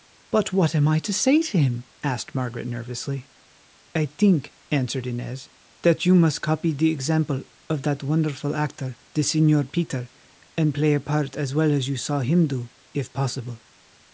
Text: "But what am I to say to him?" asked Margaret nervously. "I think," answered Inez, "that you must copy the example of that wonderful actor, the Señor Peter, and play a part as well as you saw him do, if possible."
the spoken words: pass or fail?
pass